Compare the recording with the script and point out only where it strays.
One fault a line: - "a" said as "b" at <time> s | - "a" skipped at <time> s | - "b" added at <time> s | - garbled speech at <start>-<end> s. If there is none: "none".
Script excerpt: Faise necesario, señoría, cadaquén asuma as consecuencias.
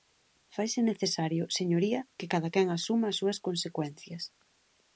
- "que" added at 2.2 s
- "súas" added at 3.2 s